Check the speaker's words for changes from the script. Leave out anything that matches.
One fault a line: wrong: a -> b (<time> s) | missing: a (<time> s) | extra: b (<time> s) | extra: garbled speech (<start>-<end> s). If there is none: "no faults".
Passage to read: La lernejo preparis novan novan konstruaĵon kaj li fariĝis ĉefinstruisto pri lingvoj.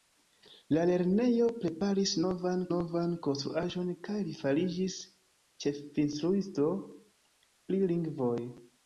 no faults